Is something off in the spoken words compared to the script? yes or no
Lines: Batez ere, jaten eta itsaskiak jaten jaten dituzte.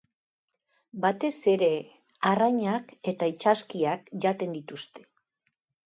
yes